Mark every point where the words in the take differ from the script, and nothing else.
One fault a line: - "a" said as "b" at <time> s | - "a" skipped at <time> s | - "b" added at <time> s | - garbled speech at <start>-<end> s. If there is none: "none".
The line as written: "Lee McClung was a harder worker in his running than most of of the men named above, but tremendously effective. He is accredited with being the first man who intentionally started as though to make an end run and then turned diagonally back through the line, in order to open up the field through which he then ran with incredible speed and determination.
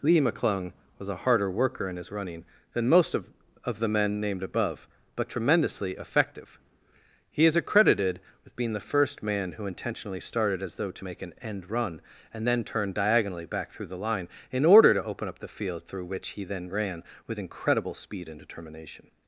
none